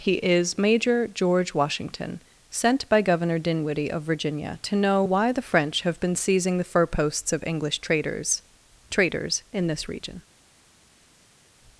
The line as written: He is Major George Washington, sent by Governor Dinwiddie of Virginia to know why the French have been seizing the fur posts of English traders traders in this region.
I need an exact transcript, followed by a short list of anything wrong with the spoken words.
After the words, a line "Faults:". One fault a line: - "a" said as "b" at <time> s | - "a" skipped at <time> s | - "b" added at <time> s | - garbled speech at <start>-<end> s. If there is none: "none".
He is Major George Washington, sent by Governor Dinwiddie of Virginia to know why the French have been seizing the fur posts of English traders traders in this region.
Faults:
none